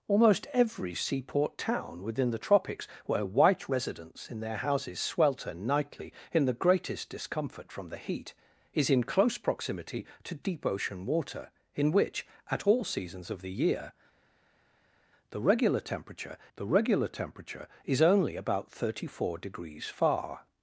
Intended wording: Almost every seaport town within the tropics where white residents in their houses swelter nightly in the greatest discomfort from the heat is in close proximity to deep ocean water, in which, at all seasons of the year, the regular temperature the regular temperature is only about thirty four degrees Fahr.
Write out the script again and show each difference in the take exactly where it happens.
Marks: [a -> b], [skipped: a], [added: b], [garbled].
Almost every seaport town within the tropics where white residents in their houses swelter nightly in the greatest discomfort from the heat is in close proximity to deep ocean water, in which, at all seasons of the year, the regular temperature the regular temperature is only about thirty four degrees Fahr.